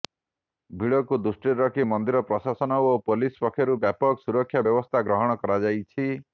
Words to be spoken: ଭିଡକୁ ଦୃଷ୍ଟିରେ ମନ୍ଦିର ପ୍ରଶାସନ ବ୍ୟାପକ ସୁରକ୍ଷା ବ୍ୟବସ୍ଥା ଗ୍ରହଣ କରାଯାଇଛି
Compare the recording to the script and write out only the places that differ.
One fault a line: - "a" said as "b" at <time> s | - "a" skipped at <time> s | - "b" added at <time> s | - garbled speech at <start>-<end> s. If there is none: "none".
- "ରଖି" added at 1.6 s
- "ଓ ପୋଲିସ ପକ୍ଷରୁ" added at 2.8 s